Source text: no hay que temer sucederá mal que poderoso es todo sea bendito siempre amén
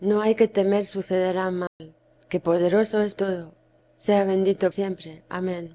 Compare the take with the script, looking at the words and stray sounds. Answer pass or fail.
fail